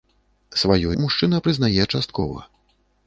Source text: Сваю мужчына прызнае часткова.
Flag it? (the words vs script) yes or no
no